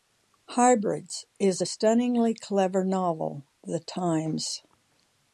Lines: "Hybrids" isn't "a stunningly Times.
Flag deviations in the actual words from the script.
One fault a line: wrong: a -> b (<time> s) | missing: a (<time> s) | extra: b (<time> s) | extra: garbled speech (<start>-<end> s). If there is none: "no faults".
wrong: isn't -> is (1.4 s)
extra: clever novel The (2.3 s)